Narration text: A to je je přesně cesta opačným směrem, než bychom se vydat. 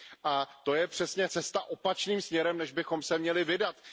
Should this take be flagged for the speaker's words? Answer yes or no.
yes